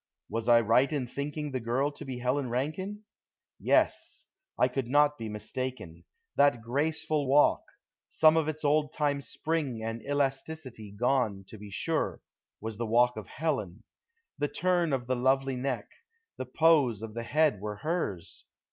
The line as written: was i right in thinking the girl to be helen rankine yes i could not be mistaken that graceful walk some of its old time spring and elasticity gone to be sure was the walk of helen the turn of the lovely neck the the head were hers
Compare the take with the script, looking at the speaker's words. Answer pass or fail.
fail